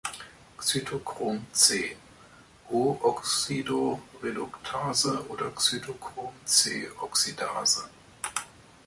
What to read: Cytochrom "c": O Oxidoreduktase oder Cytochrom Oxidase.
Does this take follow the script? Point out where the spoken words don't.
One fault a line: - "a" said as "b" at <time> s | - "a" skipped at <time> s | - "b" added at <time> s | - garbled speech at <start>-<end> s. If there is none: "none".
- "c" added at 6.4 s